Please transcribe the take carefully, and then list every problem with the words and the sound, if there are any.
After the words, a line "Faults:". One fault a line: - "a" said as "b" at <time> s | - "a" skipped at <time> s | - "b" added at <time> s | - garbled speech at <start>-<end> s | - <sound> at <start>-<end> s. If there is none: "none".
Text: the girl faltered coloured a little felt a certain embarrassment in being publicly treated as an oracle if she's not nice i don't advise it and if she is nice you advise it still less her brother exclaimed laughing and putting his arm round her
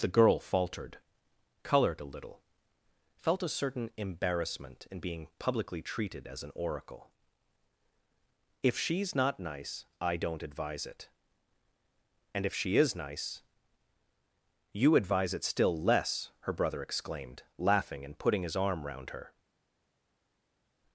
the girl faltered coloured a little felt a certain embarrassment in being publicly treated as an oracle if she's not nice i don't advise it and if she is nice you advise it still less her brother exclaimed laughing and putting his arm round her
Faults:
none